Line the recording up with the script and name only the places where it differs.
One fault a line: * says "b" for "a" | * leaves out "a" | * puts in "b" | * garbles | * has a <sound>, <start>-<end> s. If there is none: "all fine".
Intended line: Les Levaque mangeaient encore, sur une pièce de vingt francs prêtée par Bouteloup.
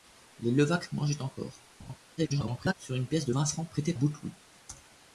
* has a laugh, 1.8-2.0 s
* garbles
* leaves out "par"